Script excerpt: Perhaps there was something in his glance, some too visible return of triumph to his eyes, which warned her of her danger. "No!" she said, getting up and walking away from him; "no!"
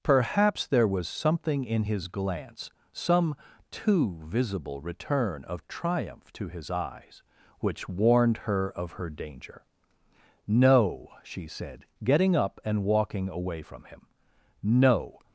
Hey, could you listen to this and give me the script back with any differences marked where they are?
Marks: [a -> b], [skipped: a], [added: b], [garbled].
Perhaps there was something in his glance, some too visible return of triumph to his eyes, which warned her of her danger. "No!" she said, getting up and walking away from him; "no!"